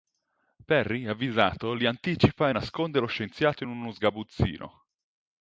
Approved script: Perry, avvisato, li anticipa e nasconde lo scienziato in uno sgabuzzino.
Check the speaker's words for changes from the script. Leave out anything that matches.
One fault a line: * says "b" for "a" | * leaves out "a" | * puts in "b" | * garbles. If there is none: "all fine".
all fine